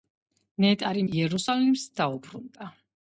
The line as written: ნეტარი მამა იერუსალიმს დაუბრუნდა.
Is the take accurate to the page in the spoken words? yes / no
no